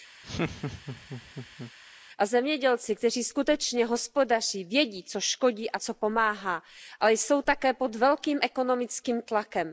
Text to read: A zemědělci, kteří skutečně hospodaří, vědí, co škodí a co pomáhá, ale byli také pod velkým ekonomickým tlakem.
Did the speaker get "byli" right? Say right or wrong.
wrong